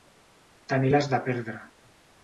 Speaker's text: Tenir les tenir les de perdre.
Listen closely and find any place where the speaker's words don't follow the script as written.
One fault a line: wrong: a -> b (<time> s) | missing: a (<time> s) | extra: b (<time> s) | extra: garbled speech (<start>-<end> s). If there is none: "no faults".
missing: tenir les (1.1 s)